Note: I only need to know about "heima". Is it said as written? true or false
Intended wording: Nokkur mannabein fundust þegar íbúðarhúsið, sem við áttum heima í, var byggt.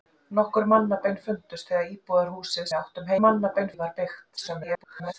false